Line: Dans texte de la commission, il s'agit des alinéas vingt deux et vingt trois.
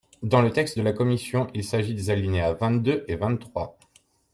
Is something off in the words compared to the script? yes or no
yes